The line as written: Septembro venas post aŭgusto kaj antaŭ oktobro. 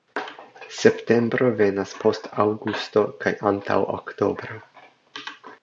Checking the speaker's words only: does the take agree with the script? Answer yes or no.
yes